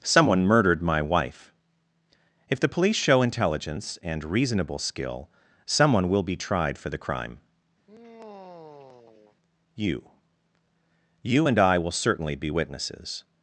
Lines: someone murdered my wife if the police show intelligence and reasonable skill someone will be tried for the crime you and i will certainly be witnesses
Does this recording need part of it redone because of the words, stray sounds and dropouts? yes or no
yes